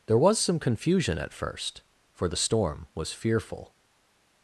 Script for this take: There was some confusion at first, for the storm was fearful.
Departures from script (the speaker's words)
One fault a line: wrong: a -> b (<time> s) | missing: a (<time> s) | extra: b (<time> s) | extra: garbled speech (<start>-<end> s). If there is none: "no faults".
no faults